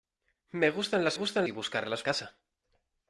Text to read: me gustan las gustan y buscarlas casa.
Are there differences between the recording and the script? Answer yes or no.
no